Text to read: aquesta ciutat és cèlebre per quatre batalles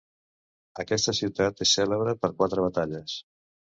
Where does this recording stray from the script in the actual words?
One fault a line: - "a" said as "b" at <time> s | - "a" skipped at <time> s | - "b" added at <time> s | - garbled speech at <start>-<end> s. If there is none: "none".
none